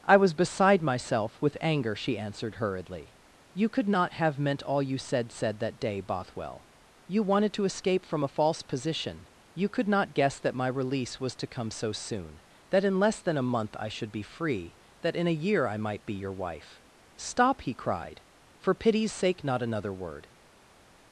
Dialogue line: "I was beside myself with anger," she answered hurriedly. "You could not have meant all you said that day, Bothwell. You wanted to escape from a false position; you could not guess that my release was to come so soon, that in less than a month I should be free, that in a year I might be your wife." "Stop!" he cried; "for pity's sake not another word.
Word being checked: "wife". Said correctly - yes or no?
yes